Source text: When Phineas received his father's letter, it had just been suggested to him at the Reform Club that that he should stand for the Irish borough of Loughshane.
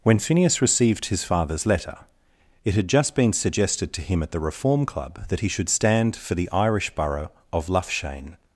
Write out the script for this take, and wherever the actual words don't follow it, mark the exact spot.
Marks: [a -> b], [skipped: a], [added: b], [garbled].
When Phineas received his father's letter, it had just been suggested to him at the Reform Club that [skipped: that] he should stand for the Irish borough of Loughshane.